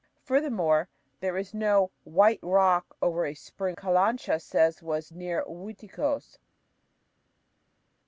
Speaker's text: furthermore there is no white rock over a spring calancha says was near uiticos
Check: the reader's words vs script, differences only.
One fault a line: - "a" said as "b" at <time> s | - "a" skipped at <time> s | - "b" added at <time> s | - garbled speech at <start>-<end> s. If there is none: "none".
none